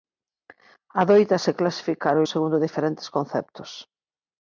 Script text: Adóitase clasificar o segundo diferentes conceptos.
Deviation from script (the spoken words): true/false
false